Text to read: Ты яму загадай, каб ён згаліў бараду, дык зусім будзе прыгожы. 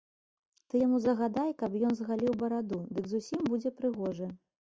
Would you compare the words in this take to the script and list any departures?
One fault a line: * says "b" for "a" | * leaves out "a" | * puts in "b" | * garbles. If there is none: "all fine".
all fine